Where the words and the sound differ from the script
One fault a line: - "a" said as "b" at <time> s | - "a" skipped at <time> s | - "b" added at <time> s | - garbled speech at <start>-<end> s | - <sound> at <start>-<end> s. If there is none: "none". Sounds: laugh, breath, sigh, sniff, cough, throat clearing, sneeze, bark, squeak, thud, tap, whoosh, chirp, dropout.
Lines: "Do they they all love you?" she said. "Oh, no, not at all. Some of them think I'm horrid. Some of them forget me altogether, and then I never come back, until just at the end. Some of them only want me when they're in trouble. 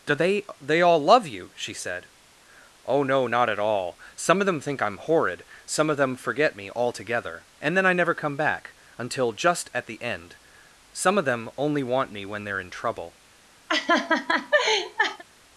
- laugh at 13.7-15.2 s